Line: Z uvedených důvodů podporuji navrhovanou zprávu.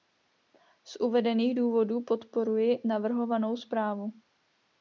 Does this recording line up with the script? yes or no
yes